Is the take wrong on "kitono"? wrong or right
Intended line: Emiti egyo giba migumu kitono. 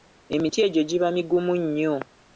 wrong